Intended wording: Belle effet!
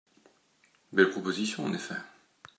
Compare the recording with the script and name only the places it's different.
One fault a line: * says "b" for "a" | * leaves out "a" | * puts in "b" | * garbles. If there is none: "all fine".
* puts in "proposition en"